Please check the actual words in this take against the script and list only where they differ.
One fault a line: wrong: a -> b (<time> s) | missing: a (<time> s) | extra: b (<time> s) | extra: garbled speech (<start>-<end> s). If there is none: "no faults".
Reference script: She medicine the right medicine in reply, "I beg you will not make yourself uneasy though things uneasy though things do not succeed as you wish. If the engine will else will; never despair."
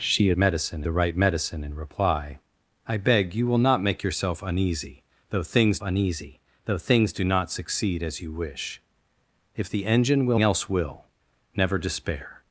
no faults